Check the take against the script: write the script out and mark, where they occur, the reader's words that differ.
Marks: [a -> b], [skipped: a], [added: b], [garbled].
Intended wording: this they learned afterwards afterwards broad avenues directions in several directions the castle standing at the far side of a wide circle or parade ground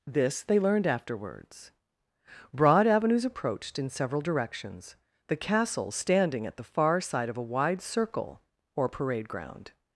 this they learned afterwards [skipped: afterwards] broad avenues [directions -> approached] in several directions the castle standing at the far side of a wide circle or parade ground